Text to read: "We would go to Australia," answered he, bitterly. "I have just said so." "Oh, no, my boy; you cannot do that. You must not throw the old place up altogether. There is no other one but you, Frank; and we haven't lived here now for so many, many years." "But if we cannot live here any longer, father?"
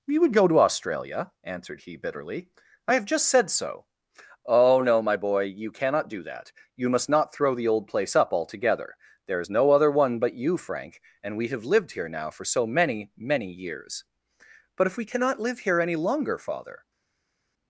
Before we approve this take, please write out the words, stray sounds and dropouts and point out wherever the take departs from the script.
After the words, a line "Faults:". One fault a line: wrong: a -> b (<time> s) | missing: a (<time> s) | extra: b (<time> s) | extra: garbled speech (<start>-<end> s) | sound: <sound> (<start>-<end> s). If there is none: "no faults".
"We would go to Australia," answered he, bitterly. "I have just said so." "Oh, no, my boy; you cannot do that. You must not throw the old place up altogether. There is no other one but you, Frank; and we have lived here now for so many, many years." "But if we cannot live here any longer, father?"
Faults:
wrong: haven't -> have (11.5 s)